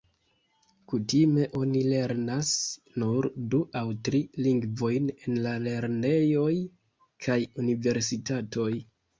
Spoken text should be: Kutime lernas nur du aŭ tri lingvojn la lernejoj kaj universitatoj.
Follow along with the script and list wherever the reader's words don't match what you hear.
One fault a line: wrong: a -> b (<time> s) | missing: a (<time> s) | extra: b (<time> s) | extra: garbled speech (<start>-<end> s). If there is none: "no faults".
extra: oni (1.6 s)
extra: en (5.2 s)